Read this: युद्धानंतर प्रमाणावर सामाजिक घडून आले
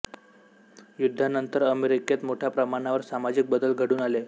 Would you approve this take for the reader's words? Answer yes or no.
no